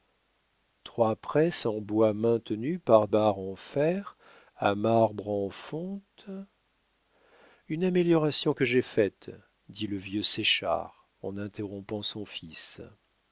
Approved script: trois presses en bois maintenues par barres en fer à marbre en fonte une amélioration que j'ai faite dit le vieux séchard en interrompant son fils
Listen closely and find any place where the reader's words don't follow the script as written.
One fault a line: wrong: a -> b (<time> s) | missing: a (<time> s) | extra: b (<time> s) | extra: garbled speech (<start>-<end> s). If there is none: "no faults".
no faults